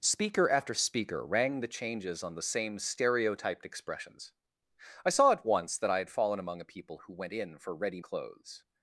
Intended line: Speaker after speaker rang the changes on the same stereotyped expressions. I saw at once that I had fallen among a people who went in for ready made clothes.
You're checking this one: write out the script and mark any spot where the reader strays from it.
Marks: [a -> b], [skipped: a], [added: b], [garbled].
Speaker after speaker rang the changes on the same stereotyped expressions. I saw at once that I had fallen among a people who went in for ready [skipped: made] clothes.